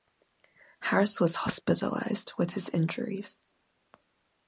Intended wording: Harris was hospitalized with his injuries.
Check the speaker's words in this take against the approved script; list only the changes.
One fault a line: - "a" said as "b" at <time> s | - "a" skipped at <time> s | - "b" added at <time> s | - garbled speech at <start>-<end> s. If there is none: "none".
none